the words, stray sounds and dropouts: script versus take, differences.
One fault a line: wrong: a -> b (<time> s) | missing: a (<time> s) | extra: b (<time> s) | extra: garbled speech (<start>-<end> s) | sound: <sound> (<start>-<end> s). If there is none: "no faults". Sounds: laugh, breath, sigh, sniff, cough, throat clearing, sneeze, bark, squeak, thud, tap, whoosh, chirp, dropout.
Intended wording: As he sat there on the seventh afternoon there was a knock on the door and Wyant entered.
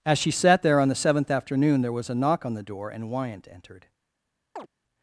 wrong: he -> she (0.2 s)
sound: chirp (4.6-4.7 s)